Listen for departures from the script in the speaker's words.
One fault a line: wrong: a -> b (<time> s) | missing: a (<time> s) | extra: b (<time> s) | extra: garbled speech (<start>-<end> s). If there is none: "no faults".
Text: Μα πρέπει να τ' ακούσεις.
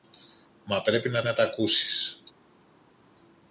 extra: να (1.2 s)